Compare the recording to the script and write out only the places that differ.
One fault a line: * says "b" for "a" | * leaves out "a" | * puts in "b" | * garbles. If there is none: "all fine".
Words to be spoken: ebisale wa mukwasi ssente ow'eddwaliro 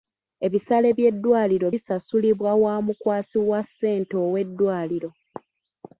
* puts in "by'eddwaliro bisasulibwa"
* puts in "wa"